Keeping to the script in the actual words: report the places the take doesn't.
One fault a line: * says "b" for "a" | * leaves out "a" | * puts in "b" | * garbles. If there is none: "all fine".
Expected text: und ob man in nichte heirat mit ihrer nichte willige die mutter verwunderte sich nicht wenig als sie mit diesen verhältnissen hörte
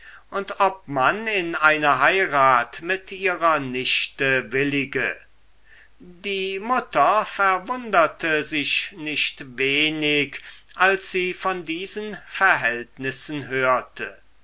* says "eine" for "nichte"
* says "von" for "mit"